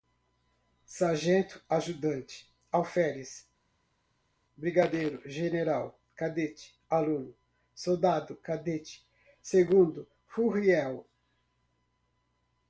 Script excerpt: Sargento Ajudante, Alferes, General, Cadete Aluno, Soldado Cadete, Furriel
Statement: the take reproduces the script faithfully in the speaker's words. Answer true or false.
false